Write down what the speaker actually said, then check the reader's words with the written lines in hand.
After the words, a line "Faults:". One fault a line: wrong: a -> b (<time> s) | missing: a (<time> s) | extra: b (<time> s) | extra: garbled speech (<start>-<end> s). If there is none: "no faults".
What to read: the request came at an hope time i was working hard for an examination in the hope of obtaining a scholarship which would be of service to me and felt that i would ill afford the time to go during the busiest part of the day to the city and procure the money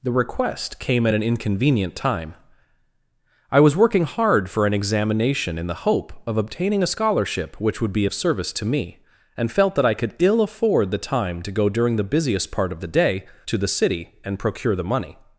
the request came at an inconvenient time i was working hard for an examination in the hope of obtaining a scholarship which would be of service to me and felt that i could ill afford the time to go during the busiest part of the day to the city and procure the money
Faults:
wrong: hope -> inconvenient (1.2 s)
wrong: would -> could (9.9 s)